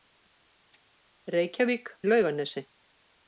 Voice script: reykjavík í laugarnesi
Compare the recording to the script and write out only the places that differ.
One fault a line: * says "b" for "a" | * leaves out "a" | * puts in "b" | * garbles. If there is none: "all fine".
all fine